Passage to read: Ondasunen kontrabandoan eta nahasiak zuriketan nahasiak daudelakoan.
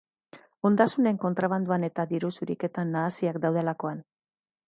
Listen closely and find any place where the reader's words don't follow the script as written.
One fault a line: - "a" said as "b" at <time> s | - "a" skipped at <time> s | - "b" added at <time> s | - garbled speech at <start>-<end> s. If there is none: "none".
- "nahasiak" said as "diru" at 2.1 s